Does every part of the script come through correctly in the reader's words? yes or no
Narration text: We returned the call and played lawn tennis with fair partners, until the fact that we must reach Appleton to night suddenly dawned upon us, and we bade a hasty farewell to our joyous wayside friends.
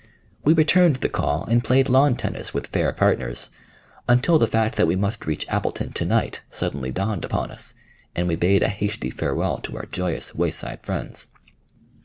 yes